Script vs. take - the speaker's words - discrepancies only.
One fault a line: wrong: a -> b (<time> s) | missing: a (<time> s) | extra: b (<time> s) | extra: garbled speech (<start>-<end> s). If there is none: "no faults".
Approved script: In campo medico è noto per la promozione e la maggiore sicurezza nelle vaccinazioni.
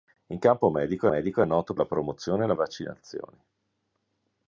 extra: medico (1.1 s)
missing: per (1.7 s)
missing: maggiore sicurezza nelle (2.5 s)